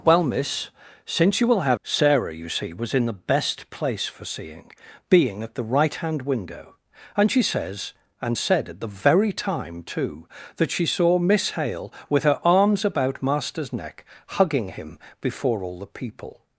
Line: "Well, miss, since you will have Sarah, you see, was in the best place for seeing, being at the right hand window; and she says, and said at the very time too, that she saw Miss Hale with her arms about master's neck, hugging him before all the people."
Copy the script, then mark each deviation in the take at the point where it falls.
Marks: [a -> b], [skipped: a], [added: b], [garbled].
"Well, miss, since you will have Sarah, you see, was in the best place for seeing, being at the right hand window; and she says, and said at the very time too, that she saw Miss Hale with her arms about master's neck, hugging him before all the people."